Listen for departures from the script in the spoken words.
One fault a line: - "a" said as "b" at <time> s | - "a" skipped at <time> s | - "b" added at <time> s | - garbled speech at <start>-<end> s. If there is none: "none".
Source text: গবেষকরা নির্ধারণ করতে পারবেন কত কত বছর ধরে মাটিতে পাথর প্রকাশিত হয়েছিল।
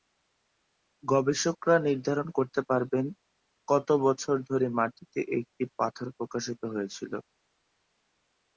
- "কত" skipped at 3.9 s
- "একটি" added at 5.4 s